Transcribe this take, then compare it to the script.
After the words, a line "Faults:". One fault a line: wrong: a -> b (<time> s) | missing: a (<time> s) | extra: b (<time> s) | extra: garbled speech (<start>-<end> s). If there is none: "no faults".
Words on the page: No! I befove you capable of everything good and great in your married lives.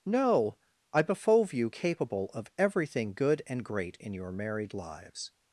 No! I befove you capable of everything good and great in your married lives.
Faults:
no faults